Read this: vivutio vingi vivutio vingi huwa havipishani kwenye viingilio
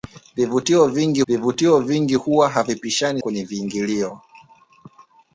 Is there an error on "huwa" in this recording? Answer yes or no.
no